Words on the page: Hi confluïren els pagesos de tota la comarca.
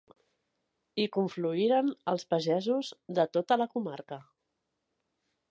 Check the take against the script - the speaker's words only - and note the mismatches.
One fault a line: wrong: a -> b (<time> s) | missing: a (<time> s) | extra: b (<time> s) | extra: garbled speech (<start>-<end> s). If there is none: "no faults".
no faults